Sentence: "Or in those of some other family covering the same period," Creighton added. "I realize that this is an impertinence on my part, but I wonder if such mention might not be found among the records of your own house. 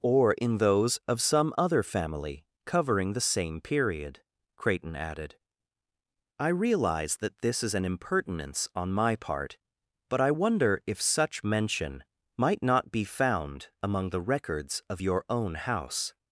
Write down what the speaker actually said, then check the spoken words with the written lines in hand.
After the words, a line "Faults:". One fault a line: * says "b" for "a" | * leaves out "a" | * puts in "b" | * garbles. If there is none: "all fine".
"Or in those of some other family covering the same period," Creighton added. "I realize that this is an impertinence on my part, but I wonder if such mention might not be found among the records of your own house.
Faults:
all fine